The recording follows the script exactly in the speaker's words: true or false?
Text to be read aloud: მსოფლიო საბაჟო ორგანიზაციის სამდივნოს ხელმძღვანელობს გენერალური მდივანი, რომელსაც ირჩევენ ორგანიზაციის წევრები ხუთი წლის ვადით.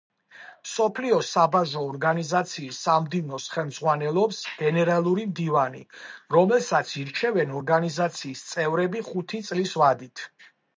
true